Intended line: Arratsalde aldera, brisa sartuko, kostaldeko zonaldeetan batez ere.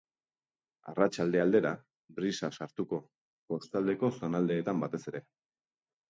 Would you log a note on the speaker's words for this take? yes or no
no